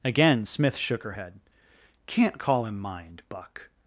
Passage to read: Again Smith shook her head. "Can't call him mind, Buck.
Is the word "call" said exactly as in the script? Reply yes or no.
yes